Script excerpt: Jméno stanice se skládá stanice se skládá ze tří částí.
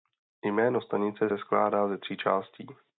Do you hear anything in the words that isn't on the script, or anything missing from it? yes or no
yes